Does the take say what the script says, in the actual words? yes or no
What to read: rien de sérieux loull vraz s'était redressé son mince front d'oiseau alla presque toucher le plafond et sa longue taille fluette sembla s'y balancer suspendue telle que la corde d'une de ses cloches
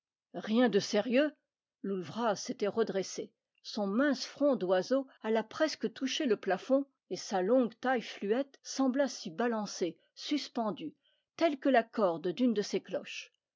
yes